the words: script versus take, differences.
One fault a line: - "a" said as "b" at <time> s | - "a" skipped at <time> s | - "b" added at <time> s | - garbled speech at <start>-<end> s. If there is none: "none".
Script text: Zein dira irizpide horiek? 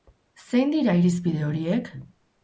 none